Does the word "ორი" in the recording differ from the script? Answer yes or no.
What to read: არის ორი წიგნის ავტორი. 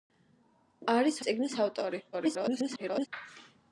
yes